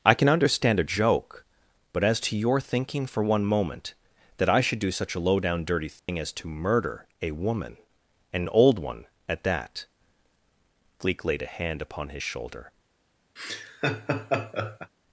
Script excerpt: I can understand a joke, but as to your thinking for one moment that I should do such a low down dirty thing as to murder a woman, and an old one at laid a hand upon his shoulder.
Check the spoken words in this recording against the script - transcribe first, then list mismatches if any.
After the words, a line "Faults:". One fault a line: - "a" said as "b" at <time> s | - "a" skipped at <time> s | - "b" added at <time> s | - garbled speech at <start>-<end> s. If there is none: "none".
I can understand a joke, but as to your thinking for one moment that I should do such a low down dirty thing as to murder a woman, and an old one at that" Gleek laid a hand upon his shoulder.
Faults:
- "that Gleek" added at 9.4 s